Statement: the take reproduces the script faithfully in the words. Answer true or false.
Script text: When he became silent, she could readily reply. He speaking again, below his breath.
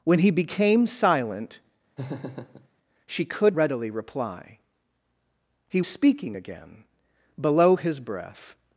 true